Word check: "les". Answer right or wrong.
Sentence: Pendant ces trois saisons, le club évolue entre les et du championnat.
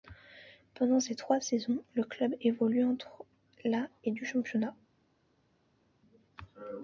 wrong